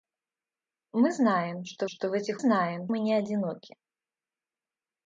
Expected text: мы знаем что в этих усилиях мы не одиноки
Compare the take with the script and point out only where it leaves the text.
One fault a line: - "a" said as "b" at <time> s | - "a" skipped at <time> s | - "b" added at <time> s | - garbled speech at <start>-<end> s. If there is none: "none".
- "что" added at 1.8 s
- "усилиях" said as "знаем" at 2.4 s